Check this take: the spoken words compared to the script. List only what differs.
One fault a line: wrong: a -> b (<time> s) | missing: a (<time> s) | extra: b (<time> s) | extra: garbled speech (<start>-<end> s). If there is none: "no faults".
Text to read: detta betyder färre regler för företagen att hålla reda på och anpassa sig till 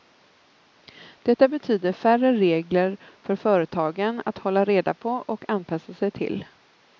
no faults